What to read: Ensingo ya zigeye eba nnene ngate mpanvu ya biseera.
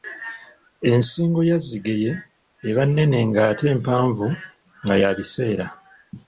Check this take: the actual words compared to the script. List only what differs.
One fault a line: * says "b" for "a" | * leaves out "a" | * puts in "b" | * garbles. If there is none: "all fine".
* puts in "nga"